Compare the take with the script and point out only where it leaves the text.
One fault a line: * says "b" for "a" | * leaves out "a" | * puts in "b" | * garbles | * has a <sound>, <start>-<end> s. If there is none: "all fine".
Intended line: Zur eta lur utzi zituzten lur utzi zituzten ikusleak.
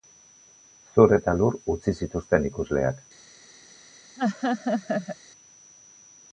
* leaves out "lur utzi zituzten"
* has a laugh, 4.2-5.2 s